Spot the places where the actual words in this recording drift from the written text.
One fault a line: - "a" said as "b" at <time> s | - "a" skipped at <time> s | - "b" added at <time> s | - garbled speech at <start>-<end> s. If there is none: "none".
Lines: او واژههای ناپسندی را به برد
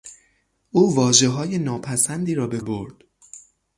none